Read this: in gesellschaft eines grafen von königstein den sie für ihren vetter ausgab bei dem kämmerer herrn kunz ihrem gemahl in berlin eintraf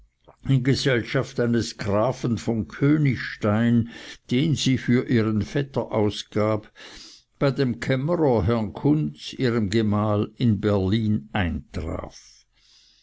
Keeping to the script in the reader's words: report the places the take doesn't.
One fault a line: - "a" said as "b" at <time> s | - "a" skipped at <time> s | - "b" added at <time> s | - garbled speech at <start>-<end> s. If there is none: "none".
none